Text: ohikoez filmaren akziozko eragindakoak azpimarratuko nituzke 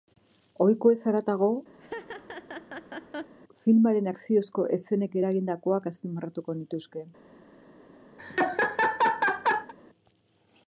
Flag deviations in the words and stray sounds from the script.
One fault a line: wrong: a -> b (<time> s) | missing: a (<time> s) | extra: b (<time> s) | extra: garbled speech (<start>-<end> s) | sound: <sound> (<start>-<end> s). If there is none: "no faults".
extra: haratago (1.1 s)
sound: laugh (1.8-3.3 s)
extra: eszenek (4.8 s)
sound: laugh (8.2-9.7 s)